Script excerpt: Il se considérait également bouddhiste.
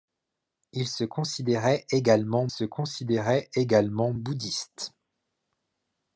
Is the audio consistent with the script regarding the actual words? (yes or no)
no